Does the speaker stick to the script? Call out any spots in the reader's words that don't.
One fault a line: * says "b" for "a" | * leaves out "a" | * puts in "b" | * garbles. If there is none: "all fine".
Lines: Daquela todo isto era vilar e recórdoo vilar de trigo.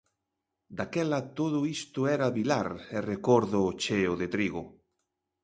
* says "cheo" for "vilar"